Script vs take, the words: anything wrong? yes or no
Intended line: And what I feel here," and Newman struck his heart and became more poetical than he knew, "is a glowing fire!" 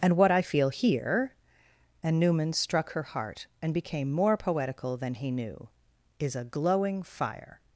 yes